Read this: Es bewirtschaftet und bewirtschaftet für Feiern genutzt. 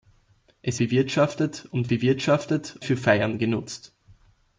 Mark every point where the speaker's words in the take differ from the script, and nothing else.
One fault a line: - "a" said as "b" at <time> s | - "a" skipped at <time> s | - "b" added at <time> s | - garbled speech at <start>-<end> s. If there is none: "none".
none